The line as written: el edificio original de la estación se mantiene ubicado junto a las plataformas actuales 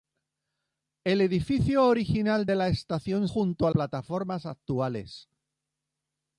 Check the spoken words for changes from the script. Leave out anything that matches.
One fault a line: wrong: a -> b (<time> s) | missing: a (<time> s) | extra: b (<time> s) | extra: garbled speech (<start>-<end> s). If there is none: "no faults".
missing: se mantiene ubicado (3.3 s)
missing: las (3.7 s)